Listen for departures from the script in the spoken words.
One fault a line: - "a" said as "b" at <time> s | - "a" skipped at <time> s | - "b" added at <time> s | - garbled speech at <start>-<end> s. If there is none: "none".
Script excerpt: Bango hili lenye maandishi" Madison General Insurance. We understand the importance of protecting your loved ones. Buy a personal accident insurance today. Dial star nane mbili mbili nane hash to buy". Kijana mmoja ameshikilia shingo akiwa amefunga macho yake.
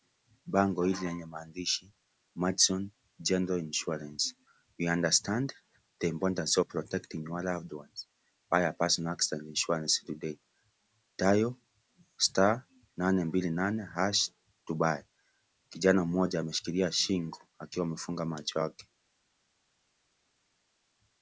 - "mbili" skipped at 13.5 s